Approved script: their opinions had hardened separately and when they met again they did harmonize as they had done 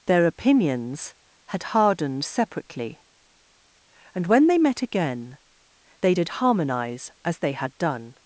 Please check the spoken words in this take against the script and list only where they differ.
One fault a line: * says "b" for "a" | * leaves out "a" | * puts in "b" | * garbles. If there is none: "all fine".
all fine